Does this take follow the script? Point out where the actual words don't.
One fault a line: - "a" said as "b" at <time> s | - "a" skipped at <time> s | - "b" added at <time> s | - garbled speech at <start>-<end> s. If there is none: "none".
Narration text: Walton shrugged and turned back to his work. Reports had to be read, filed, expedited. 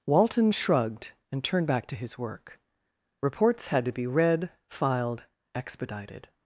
none